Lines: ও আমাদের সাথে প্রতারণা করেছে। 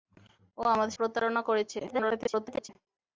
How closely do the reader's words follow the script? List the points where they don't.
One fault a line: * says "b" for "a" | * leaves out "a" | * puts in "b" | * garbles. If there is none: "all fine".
* leaves out "সাথে"
* garbles